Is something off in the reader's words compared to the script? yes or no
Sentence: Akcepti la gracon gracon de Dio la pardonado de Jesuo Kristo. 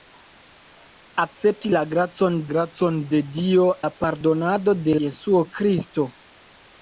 no